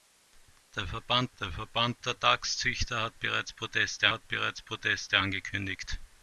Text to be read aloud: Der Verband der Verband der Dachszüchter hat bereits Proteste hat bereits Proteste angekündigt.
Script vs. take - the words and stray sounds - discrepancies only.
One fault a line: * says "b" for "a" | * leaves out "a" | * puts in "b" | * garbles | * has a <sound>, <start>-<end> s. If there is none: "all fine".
all fine